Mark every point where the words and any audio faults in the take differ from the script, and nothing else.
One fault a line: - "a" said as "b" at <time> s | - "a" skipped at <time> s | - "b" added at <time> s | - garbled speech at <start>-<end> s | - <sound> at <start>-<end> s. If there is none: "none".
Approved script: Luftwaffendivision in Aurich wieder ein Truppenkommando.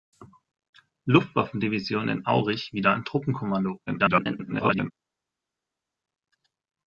- garbled speech at 3.9-4.9 s